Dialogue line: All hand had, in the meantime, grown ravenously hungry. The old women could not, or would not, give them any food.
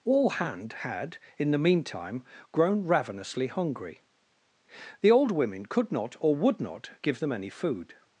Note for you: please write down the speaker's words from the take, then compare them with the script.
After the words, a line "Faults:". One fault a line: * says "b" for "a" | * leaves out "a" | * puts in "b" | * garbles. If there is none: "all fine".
All hand had, in the meantime, grown ravenously hungry. The old women could not, or would not, give them any food.
Faults:
all fine